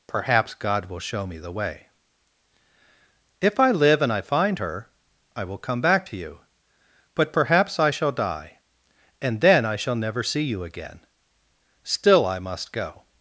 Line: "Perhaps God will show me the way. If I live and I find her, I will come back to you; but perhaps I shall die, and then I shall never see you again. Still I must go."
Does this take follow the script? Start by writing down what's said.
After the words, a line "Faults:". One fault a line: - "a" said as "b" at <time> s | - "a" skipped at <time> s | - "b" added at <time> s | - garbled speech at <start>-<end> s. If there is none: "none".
"Perhaps God will show me the way. If I live and I find her, I will come back to you; but perhaps I shall die, and then I shall never see you again. Still I must go."
Faults:
none